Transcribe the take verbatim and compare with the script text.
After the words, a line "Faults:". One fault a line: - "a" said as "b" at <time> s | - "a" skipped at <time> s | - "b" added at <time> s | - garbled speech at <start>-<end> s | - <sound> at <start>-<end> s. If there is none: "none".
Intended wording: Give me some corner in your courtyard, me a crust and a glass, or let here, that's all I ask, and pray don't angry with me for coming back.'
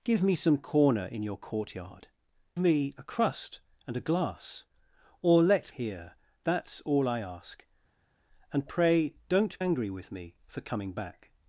Give me some corner in your courtyard, me a crust and a glass, or let here, that's all I ask, and pray don't angry with me for coming back.'
Faults:
none